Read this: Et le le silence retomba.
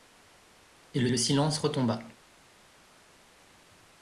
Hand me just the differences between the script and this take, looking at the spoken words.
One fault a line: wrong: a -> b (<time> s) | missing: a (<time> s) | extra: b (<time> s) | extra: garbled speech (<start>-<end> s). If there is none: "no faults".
no faults